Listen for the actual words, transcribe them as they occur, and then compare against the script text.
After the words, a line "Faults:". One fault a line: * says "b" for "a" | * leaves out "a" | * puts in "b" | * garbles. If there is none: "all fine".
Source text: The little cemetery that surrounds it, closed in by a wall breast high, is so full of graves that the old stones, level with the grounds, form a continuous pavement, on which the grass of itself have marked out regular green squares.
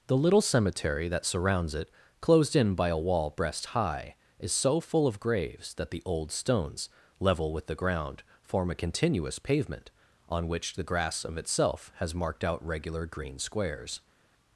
The little cemetery that surrounds it, closed in by a wall breast high, is so full of graves that the old stones, level with the ground, form a continuous pavement, on which the grass of itself has marked out regular green squares.
Faults:
* says "ground" for "grounds"
* says "has" for "have"